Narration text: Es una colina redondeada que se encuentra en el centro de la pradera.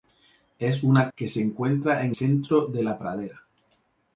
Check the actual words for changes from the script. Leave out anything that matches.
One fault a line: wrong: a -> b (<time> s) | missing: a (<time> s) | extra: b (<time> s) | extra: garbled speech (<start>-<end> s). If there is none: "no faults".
missing: colina redondeada (1.1 s)
missing: el (2.2 s)